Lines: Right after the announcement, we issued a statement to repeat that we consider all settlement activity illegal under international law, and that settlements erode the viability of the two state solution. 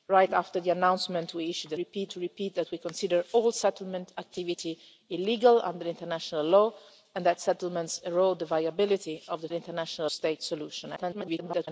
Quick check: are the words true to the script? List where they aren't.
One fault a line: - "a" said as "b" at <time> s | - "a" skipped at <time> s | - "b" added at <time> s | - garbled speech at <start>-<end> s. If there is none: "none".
- "statement" said as "repeat" at 1.8 s
- "two" said as "international" at 9.5 s
- garbled speech at 11.0-11.7 s